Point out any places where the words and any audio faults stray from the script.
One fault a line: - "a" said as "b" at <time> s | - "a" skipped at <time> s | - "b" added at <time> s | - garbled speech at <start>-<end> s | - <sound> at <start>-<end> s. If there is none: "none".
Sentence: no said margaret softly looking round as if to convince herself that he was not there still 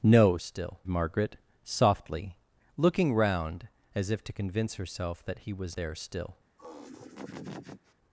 - "said" said as "still" at 0.4 s
- "not" skipped at 5.8 s
- laugh at 6.6-7.9 s